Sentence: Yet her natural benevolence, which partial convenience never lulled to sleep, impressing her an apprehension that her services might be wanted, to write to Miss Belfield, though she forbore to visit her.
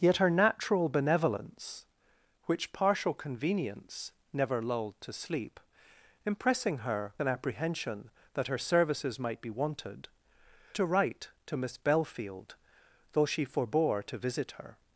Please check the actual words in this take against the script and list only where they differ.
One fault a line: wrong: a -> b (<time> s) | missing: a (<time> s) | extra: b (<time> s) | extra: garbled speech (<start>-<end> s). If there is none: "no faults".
no faults